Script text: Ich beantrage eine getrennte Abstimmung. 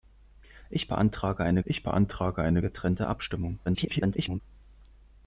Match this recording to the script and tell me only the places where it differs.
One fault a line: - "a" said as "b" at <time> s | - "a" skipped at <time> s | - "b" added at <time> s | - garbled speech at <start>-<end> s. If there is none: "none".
- "ich beantrage eine" added at 1.7 s
- garbled speech at 3.6-4.4 s